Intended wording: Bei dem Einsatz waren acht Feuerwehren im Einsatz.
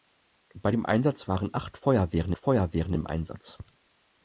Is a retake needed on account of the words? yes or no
yes